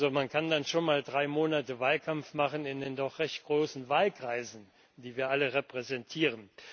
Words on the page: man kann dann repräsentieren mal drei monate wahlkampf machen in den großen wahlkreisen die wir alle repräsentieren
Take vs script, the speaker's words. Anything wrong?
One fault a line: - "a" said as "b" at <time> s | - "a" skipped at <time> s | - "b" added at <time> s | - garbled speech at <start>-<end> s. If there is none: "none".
- "repräsentieren" said as "schon" at 0.7 s
- "doch recht" added at 3.0 s